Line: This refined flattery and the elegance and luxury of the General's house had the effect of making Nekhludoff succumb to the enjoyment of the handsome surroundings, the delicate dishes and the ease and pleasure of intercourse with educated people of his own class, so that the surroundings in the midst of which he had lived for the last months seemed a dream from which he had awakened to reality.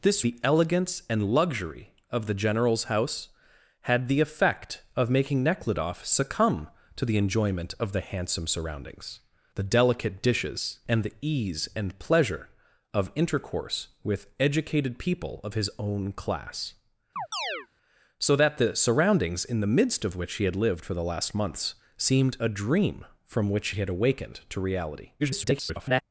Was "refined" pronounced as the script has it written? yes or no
no